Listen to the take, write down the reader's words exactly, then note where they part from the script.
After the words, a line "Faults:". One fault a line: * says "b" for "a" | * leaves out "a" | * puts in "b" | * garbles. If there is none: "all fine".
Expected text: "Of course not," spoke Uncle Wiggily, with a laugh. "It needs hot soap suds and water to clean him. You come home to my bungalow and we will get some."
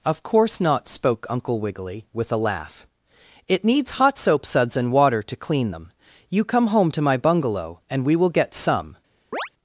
"Of course not," spoke Uncle Wiggily, with a laugh. "It needs hot soap suds and water to clean them. You come home to my bungalow and we will get some."
Faults:
* says "them" for "him"